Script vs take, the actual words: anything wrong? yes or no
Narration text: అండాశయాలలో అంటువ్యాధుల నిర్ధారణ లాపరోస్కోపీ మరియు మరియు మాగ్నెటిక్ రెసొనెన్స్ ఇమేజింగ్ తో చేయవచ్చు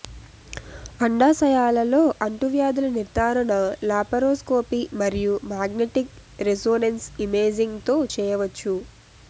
yes